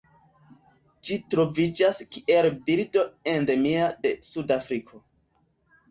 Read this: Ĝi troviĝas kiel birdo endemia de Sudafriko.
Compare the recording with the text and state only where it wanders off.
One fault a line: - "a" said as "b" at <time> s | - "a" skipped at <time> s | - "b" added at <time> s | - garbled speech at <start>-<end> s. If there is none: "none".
none